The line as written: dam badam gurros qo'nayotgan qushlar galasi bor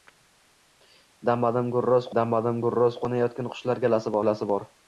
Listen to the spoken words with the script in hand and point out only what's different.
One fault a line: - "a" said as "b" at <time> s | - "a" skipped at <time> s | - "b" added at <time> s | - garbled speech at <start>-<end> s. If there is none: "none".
- "dam badam gurros" added at 2.2 s
- "galasi" added at 4.2 s